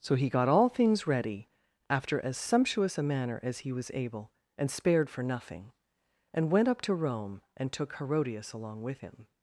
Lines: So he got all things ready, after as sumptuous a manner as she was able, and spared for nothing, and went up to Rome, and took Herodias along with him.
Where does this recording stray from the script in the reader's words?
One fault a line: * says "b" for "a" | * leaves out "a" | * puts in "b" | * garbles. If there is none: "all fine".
* says "he" for "she"